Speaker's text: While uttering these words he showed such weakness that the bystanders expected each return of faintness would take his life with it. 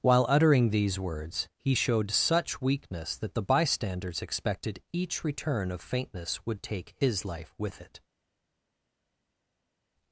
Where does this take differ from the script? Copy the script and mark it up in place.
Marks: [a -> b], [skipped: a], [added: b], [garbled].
While uttering these words he showed such weakness that the bystanders expected each return of faintness would take his life with it.